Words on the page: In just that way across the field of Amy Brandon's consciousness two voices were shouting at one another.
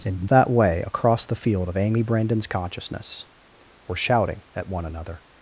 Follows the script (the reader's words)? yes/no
no